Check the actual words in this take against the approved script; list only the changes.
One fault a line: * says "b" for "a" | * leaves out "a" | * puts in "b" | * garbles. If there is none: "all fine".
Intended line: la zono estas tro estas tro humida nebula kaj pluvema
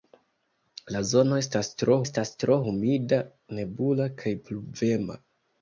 all fine